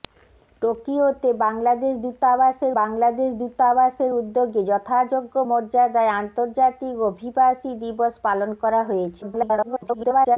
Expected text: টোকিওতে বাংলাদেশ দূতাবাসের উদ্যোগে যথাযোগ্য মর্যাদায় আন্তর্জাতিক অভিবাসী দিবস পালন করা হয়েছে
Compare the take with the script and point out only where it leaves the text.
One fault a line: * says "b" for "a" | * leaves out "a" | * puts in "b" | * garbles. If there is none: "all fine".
* puts in "বাংলাদেশ দূতাবাসের"
* garbles